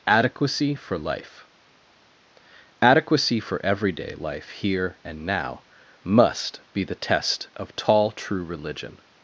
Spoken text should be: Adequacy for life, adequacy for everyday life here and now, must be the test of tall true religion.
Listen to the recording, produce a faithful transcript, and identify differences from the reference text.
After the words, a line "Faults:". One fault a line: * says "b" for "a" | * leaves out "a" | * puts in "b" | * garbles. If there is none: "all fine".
Adequacy for life, adequacy for everyday life here and now, must be the test of tall true religion.
Faults:
all fine